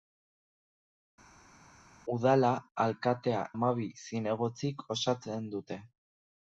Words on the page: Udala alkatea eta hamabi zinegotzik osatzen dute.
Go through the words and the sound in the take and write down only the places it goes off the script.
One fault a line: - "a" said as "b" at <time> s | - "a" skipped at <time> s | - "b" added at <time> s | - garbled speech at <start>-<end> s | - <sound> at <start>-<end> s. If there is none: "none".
- "eta" skipped at 3.4 s